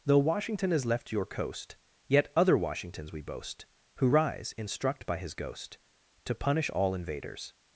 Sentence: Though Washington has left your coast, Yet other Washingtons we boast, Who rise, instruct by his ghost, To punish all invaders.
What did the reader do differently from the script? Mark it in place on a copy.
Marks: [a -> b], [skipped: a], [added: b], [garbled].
Though Washington has left your coast, Yet other Washingtons we boast, Who rise, instruct by his ghost, To punish all invaders.